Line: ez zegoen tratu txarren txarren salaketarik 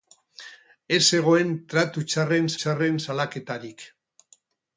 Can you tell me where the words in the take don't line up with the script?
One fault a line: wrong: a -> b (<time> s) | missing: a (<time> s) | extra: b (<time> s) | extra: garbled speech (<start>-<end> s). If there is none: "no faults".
no faults